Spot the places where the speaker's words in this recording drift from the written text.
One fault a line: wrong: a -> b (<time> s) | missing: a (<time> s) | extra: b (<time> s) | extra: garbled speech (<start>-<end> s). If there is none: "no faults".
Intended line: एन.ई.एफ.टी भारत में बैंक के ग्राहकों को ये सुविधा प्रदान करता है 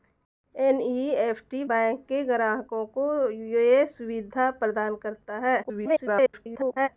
missing: भारत में (1.6 s)
extra: garbled speech (5.6-6.9 s)